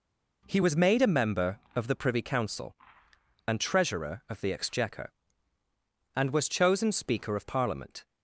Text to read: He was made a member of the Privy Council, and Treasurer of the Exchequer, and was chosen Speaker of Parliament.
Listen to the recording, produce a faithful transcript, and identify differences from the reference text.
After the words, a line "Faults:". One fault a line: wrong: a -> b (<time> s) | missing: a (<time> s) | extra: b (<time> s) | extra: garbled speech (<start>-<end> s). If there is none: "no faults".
He was made a member of the Privy Council, and Treasurer of the Exchequer, and was chosen Speaker of Parliament.
Faults:
no faults